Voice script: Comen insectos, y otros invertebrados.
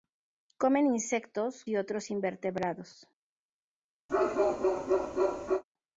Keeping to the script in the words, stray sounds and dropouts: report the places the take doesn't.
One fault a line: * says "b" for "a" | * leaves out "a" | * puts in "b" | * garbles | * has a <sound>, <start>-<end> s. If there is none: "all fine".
* has a bark, 4.1-5.6 s